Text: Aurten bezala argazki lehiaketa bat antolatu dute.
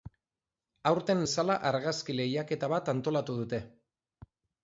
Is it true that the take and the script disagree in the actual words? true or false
false